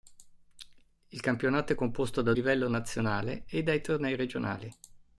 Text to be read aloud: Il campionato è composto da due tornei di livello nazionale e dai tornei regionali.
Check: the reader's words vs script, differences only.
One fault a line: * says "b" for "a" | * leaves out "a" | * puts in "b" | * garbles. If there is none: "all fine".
* leaves out "due tornei di"